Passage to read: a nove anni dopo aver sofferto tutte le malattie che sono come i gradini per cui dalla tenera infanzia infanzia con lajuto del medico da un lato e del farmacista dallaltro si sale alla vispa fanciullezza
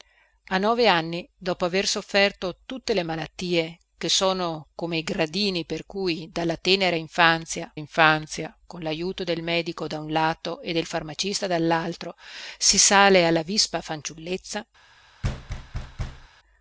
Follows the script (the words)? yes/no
yes